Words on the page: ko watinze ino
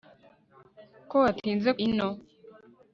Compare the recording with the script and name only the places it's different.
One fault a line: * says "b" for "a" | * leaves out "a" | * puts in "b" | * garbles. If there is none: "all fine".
all fine